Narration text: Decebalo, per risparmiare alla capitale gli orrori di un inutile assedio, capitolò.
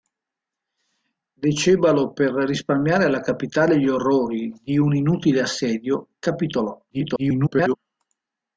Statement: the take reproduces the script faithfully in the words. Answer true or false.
false